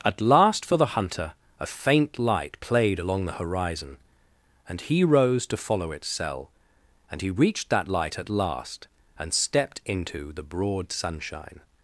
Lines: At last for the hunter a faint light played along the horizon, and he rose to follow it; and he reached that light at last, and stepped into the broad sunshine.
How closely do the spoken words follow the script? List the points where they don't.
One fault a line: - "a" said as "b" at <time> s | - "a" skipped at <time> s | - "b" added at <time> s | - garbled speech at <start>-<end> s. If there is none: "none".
- "it" said as "its cell" at 5.9 s